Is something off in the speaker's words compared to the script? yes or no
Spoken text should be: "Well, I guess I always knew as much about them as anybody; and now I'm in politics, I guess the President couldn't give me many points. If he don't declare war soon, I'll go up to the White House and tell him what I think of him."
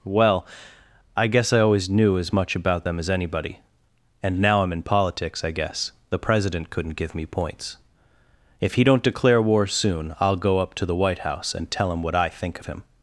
yes